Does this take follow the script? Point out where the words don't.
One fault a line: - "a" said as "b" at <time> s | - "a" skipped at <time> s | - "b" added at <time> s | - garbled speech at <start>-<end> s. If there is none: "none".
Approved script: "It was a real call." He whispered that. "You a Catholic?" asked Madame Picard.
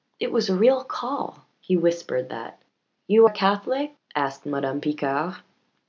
none